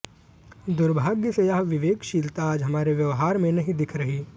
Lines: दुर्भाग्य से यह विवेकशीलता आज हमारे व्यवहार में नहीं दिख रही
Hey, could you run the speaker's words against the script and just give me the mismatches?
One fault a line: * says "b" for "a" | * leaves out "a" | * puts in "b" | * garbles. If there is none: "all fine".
all fine